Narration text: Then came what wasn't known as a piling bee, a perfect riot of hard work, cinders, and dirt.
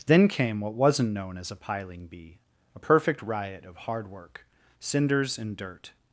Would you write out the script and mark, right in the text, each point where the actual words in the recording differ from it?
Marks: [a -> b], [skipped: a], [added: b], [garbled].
Then came what wasn't known as a piling bee, a perfect riot of hard work, cinders, and dirt.